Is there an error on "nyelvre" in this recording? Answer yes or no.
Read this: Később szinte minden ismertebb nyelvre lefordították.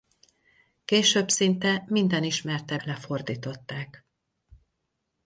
yes